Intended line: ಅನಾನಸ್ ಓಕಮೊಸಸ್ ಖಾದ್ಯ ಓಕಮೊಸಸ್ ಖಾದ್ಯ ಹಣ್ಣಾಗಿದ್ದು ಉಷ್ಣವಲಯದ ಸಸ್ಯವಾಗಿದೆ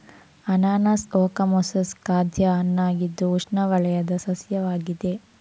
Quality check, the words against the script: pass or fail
fail